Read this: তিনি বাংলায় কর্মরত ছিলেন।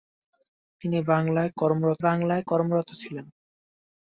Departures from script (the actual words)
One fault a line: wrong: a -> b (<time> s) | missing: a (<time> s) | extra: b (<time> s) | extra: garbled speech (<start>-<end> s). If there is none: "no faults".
extra: বাংলায় কর্মরত (2.0 s)